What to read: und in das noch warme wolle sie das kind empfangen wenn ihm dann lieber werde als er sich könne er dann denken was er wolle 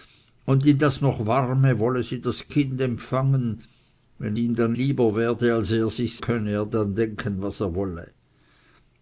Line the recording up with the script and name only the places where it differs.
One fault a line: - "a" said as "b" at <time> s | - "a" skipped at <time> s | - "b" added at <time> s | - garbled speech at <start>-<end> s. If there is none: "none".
none